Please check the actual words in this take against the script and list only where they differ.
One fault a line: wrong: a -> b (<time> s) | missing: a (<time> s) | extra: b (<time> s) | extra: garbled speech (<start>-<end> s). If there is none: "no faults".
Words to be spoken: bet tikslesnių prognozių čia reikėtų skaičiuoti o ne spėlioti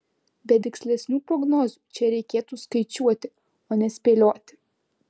no faults